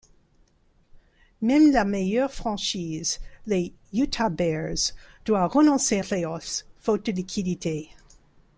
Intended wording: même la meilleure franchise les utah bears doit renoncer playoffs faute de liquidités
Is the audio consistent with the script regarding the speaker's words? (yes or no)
yes